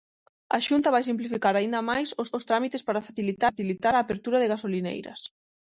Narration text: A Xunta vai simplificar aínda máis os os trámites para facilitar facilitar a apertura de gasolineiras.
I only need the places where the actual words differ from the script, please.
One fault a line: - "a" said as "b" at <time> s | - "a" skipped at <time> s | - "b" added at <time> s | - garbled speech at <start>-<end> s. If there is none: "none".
none